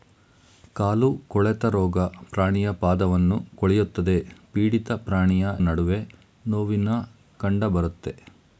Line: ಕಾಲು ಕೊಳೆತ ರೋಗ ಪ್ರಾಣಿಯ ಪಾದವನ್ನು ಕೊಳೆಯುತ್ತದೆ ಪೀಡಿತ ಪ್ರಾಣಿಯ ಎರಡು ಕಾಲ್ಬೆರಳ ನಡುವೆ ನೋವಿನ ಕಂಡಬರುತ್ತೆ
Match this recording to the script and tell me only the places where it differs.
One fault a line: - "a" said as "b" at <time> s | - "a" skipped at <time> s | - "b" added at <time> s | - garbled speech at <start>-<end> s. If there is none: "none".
- "ಎರಡು ಕಾಲ್ಬೆರಳ" skipped at 5.5 s